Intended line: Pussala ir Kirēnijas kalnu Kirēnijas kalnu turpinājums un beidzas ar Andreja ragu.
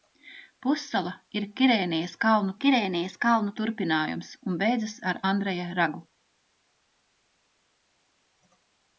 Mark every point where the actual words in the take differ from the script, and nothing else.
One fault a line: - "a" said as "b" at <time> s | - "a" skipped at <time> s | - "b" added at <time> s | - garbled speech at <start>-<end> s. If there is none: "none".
none